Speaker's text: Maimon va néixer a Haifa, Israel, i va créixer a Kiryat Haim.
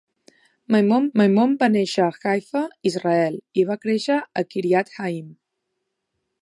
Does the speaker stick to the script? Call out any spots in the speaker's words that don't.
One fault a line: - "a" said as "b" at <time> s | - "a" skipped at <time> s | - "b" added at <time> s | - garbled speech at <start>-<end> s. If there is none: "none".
- "maimon" added at 1.2 s